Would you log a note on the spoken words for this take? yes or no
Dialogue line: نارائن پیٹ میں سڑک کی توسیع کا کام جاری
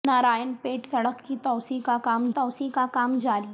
yes